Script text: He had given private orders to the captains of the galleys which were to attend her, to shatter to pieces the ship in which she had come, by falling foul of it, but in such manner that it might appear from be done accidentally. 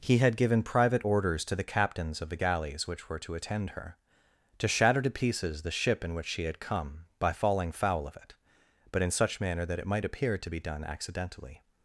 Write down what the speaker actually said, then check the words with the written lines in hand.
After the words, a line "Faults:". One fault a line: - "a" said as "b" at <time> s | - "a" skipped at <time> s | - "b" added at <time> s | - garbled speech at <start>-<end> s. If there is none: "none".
He had given private orders to the captains of the galleys which were to attend her, to shatter to pieces the ship in which she had come, by falling foul of it, but in such manner that it might appear to be done accidentally.
Faults:
- "from" said as "to" at 10.4 s